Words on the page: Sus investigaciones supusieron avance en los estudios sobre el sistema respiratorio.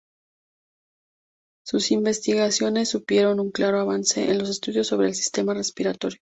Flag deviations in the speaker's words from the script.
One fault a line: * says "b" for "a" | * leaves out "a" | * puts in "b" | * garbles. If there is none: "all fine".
* puts in "un claro"